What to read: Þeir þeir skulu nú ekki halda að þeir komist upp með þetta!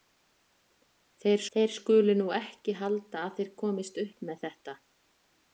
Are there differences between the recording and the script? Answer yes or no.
no